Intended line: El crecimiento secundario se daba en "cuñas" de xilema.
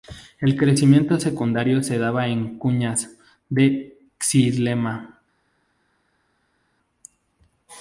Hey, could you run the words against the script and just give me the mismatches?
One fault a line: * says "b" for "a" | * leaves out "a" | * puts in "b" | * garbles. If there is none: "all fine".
all fine